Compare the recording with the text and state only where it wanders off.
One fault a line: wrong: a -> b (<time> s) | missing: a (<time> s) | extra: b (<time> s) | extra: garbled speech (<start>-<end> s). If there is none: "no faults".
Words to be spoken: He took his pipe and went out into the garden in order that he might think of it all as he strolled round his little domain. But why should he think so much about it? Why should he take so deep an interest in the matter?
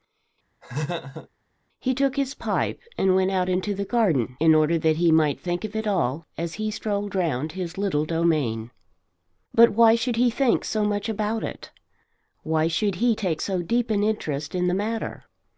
no faults